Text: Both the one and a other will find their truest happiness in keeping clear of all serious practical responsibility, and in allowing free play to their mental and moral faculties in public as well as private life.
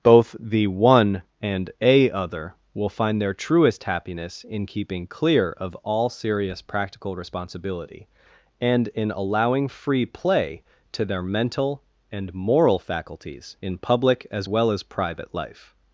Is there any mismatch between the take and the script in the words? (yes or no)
no